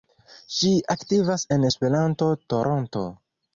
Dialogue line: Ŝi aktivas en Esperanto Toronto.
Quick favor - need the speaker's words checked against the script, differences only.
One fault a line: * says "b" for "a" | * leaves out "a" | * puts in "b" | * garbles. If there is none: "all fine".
all fine